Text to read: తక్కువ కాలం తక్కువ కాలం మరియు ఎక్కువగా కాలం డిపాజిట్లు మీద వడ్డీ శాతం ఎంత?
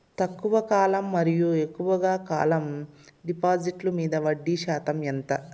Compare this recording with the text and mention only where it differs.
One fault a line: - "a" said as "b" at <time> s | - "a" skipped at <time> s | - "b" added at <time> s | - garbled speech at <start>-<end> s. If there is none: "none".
- "తక్కువ కాలం" skipped at 1.1 s